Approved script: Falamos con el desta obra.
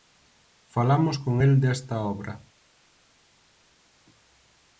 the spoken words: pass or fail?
pass